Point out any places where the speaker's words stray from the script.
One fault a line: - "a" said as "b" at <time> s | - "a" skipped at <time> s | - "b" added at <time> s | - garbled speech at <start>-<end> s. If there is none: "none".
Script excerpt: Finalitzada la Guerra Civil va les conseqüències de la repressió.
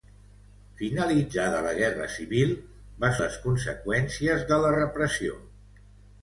none